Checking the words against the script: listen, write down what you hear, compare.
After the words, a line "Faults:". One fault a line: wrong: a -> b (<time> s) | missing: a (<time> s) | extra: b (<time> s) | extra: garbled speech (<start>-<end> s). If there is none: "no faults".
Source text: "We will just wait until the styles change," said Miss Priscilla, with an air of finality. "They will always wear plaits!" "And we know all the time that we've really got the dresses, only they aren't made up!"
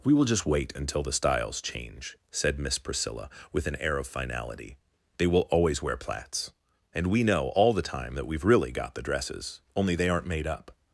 "We will just wait until the styles change," said Miss Priscilla, with an air of finality. "They will always wear plaits!" "And we know all the time that we've really got the dresses, only they aren't made up!"
Faults:
no faults